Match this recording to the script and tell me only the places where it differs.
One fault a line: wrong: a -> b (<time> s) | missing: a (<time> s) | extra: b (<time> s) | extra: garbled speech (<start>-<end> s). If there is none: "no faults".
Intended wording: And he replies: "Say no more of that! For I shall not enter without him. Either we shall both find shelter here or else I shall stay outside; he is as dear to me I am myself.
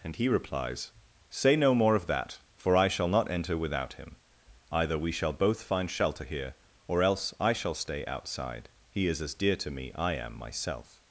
no faults